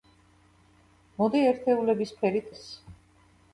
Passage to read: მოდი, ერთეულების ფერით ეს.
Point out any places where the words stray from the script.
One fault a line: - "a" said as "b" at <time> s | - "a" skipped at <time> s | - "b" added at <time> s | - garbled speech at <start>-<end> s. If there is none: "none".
none